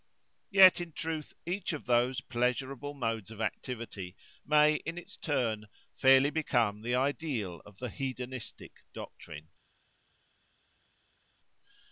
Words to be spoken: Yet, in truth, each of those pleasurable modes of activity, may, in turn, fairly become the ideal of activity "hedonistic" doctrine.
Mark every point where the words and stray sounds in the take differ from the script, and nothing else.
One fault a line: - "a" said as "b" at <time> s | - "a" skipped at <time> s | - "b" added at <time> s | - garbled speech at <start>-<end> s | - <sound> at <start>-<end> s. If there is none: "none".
- "its" added at 5.0 s
- "activity" said as "the" at 7.8 s